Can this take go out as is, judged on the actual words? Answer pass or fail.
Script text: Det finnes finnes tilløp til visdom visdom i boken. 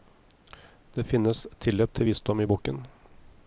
fail